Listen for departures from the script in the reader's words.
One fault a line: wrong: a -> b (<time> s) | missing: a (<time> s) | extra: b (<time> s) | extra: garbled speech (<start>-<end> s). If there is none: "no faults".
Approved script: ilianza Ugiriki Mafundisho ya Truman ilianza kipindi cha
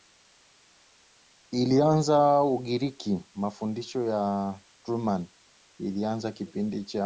no faults